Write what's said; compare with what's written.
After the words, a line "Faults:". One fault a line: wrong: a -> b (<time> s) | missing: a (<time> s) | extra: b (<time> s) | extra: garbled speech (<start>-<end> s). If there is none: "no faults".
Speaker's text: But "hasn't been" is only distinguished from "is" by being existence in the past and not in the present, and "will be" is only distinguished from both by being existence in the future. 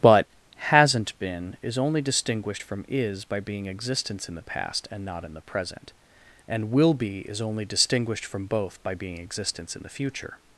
But "hasn't been" is only distinguished from "is" by being existence in the past and not in the present, and "will be" is only distinguished from both by being existence in the future.
Faults:
no faults